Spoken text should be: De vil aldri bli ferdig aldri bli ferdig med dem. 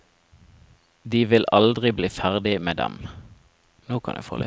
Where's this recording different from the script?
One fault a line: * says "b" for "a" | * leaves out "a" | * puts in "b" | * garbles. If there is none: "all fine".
* leaves out "aldri bli ferdig"